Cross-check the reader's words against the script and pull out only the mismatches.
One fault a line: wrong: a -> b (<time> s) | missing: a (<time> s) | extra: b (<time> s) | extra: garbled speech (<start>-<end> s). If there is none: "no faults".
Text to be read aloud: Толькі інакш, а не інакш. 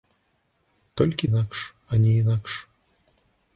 no faults